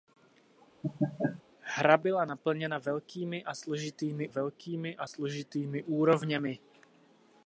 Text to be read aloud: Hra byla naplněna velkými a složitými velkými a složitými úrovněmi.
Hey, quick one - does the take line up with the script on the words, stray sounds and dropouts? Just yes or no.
no